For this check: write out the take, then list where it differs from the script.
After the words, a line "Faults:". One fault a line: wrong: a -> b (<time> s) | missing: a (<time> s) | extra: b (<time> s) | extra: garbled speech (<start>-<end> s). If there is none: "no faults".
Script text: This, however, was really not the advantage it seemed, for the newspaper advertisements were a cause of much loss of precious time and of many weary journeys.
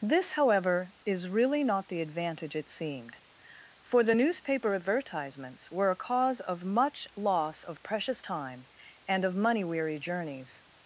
This, however, is really not the advantage it seemed, for the newspaper advertisements were a cause of much loss of precious time and of money weary journeys.
Faults:
wrong: was -> is (1.1 s)
wrong: many -> money (9.3 s)